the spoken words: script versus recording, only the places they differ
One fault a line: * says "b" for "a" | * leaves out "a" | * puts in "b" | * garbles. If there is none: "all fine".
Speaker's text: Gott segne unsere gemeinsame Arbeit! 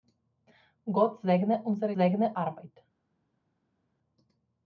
* says "segne" for "gemeinsame"